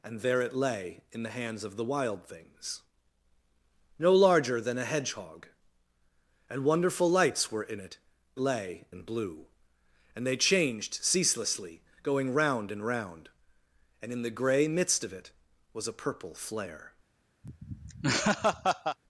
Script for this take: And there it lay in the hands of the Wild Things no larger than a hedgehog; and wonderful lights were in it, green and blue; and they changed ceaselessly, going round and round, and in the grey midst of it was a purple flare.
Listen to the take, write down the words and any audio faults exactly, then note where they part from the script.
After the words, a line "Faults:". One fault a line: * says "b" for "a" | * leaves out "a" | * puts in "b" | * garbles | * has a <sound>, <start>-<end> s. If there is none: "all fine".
And there it lay in the hands of the Wild Things no larger than a hedgehog; and wonderful lights were in it, lay and blue; and they changed ceaselessly, going round and round, and in the grey midst of it was a purple flare.
Faults:
* says "lay" for "green"
* has a laugh, 17.4-19.0 s